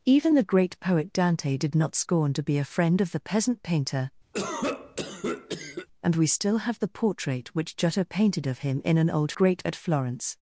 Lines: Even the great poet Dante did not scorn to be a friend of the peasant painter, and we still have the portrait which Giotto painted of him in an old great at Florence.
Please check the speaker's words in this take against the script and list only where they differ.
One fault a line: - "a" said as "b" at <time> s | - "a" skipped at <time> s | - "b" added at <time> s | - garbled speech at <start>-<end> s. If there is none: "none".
none